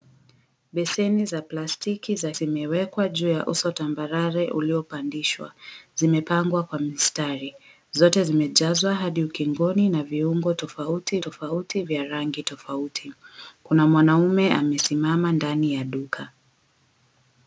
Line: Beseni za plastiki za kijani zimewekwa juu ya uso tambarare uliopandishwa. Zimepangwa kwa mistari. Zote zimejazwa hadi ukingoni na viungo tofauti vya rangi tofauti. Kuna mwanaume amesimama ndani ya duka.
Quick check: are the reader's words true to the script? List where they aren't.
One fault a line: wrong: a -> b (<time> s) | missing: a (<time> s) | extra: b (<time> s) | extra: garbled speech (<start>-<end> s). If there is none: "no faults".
missing: kijani (2.3 s)
extra: tofauti (11.2 s)